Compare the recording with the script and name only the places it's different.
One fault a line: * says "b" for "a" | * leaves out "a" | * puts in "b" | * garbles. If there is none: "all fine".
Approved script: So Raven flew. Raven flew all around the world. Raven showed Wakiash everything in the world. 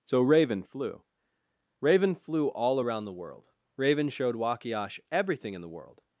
all fine